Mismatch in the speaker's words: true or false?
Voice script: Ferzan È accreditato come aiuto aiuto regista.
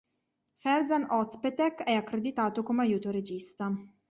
true